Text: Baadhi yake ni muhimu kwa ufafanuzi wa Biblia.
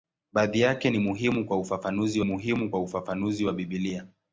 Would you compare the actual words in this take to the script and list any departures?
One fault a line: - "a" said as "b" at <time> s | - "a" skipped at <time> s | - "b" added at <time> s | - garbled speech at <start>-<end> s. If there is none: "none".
- "muhimu kwa ufafanuzi" added at 2.2 s